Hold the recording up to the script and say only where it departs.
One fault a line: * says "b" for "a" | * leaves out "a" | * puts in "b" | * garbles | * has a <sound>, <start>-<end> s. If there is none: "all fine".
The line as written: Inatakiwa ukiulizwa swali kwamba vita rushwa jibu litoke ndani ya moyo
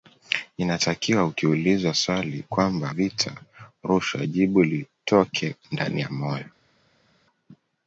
all fine